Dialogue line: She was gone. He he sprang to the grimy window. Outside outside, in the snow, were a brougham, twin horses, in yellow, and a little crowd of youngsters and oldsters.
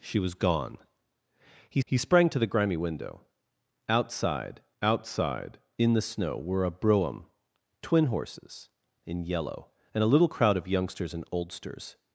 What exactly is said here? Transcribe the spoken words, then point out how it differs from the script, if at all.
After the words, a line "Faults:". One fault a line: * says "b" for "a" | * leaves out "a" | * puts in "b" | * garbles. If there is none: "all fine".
She was gone. He he sprang to the grimy window. Outside outside, in the snow, were a brougham, twin horses, in yellow, and a little crowd of youngsters and oldsters.
Faults:
all fine